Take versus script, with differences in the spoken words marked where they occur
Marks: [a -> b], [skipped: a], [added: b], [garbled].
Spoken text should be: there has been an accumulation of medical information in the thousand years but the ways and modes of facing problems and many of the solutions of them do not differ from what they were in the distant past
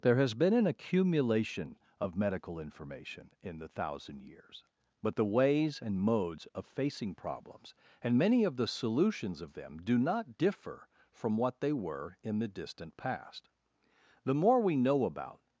there has been an accumulation of medical information in the thousand years but the ways and modes of facing problems and many of the solutions of them do not differ from what they were in the distant past [added: the more we know about]